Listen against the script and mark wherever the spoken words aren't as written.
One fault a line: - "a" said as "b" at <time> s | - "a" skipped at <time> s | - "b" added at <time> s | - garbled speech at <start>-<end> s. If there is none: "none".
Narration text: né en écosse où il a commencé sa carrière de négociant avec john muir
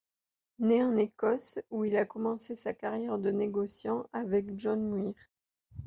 none